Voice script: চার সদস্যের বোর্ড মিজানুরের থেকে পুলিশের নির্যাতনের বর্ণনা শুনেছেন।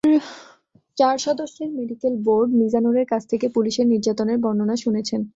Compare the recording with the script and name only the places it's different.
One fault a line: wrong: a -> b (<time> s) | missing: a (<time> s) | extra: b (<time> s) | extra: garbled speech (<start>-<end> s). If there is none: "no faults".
extra: মেডিকেল (1.8 s)
extra: কাছ (3.1 s)